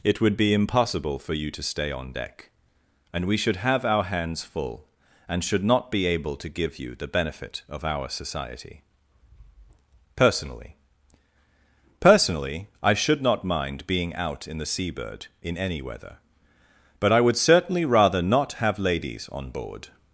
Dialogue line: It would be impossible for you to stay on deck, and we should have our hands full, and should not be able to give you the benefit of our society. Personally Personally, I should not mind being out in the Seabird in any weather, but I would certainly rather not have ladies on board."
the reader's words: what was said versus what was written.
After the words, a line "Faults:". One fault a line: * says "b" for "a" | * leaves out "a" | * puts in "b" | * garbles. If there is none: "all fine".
It would be impossible for you to stay on deck, and we should have our hands full, and should not be able to give you the benefit of our society. Personally Personally, I should not mind being out in the Seabird in any weather, but I would certainly rather not have ladies on board."
Faults:
all fine